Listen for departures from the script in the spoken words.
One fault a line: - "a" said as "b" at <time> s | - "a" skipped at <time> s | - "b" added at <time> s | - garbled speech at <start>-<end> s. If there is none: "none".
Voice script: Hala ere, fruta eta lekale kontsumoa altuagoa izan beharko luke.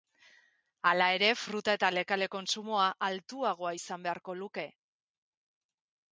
none